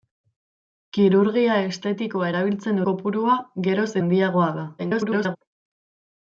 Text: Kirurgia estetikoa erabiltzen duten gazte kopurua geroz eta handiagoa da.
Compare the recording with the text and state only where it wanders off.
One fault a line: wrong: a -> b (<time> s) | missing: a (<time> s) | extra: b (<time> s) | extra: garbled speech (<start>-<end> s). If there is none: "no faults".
missing: duten gazte (2.8 s)
missing: eta (3.9 s)
extra: garbled speech (4.8-5.4 s)